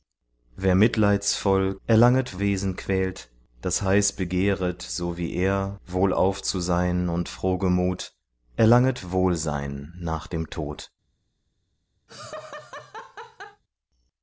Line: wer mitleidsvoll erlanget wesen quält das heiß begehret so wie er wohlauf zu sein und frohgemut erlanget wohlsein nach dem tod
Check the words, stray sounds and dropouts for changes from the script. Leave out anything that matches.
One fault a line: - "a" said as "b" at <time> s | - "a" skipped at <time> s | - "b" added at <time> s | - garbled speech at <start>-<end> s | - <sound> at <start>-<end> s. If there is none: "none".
- laugh at 12.1-13.6 s